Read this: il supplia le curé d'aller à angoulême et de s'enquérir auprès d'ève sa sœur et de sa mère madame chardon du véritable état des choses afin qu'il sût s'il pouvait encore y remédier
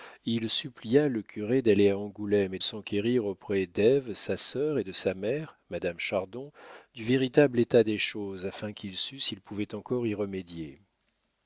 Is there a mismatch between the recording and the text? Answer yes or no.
yes